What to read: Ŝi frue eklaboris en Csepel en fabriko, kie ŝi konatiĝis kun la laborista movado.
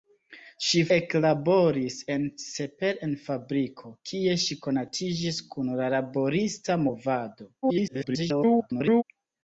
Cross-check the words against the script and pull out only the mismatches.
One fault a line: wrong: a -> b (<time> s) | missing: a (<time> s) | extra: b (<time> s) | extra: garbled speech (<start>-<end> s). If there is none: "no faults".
missing: frue (0.8 s)
extra: garbled speech (7.6-9.0 s)